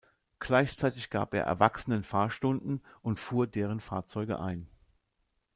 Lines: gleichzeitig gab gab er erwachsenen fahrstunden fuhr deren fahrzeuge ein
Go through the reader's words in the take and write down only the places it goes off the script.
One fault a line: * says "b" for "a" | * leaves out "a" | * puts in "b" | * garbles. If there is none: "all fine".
* leaves out "gab"
* puts in "und"